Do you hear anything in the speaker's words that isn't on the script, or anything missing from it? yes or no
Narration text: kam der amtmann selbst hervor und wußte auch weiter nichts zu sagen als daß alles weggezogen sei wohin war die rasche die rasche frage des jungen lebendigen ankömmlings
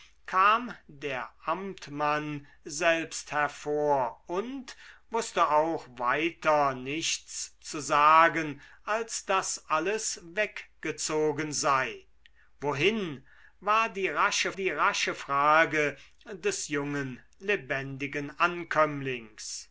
no